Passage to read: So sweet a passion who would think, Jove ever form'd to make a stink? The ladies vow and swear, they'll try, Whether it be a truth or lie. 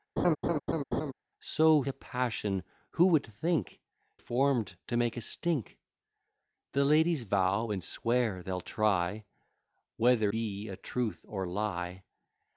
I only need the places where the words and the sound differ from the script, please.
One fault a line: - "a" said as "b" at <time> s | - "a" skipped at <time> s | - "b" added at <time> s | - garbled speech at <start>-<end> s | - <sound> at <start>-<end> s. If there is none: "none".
- laugh at 0.2-1.1 s
- "sweet" skipped at 1.8 s
- "Jove ever" skipped at 3.8 s
- "it" skipped at 10.3 s